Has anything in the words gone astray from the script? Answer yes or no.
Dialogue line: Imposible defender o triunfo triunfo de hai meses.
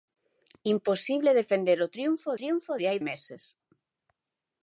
no